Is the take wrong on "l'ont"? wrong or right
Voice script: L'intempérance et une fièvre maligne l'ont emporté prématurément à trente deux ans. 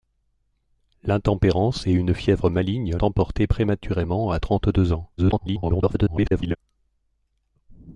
wrong